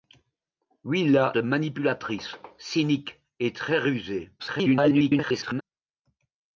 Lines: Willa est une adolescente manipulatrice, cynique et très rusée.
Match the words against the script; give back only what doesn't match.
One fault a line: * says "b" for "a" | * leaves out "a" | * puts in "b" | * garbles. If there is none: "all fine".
* leaves out "est une adolescente"
* garbles